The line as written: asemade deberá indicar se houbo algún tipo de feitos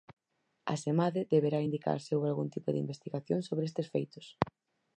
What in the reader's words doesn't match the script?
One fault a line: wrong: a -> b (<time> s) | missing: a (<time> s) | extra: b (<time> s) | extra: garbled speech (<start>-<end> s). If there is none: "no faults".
extra: investigación sobre estes (2.8 s)